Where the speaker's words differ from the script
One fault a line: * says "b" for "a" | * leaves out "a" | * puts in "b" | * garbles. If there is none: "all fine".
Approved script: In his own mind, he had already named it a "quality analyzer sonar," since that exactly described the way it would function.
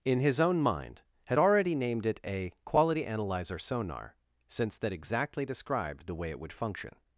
* leaves out "he"